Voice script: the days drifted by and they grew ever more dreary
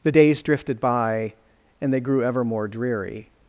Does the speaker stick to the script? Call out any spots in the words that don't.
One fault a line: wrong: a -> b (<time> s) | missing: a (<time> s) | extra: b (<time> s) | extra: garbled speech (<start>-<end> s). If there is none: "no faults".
no faults